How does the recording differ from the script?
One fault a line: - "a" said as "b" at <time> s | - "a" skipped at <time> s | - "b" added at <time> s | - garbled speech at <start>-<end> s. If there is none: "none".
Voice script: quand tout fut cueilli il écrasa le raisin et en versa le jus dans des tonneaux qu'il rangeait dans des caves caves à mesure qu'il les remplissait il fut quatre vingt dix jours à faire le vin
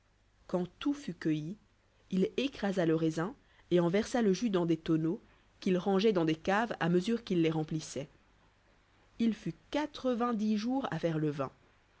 - "caves" skipped at 6.8 s